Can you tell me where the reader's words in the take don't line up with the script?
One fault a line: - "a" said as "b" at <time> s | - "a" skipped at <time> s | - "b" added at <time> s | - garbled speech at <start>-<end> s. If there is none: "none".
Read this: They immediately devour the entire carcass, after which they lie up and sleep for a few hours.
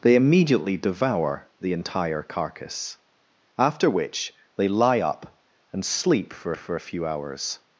- "for" added at 6.6 s